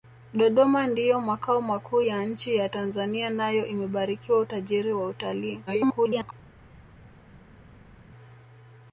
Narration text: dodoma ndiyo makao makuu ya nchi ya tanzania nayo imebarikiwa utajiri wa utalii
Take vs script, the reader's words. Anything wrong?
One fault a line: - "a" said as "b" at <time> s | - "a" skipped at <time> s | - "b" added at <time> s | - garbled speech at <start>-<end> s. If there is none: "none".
- garbled speech at 5.7-6.3 s